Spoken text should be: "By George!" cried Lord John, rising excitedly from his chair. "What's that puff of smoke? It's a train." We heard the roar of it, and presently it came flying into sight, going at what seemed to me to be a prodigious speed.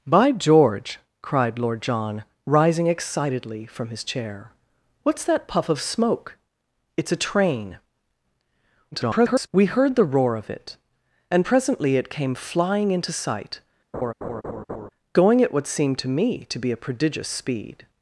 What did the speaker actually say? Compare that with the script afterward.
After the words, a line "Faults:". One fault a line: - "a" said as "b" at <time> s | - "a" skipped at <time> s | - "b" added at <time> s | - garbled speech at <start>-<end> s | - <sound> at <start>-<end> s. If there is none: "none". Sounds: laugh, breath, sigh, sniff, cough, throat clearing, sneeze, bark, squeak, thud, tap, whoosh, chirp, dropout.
"By George!" cried Lord John, rising excitedly from his chair. "What's that puff of smoke? It's a train." [garbled] We heard the roar of it, and presently it came flying into sight, going at what seemed to me to be a prodigious speed.
Faults:
- garbled speech at 8.9-9.5 s
- laugh at 13.9-14.9 s